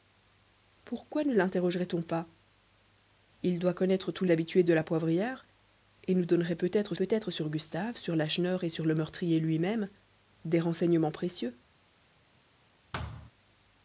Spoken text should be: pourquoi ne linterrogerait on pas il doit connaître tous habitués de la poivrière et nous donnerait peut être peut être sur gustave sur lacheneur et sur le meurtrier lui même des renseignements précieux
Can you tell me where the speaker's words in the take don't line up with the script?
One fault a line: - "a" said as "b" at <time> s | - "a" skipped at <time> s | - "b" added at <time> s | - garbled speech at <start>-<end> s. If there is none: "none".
none